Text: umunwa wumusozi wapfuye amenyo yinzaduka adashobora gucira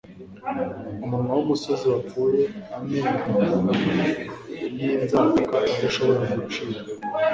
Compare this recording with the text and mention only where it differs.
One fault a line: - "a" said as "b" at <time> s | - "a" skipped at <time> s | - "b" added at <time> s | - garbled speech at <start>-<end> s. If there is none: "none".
none